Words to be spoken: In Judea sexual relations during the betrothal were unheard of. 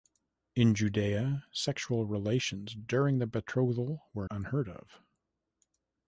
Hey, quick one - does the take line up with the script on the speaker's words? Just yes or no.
yes